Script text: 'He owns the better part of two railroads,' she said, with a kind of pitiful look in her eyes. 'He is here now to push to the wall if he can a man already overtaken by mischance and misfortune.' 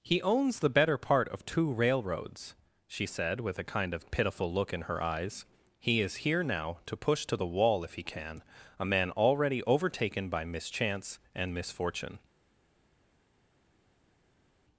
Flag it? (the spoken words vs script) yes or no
no